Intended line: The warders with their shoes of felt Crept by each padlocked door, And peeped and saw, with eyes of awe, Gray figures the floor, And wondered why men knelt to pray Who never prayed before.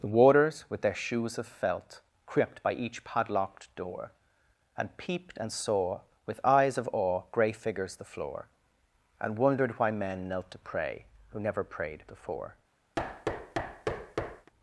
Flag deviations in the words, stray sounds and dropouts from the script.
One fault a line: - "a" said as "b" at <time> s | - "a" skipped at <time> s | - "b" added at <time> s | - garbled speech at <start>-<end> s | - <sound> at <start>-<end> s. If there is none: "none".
- thud at 13.0-14.5 s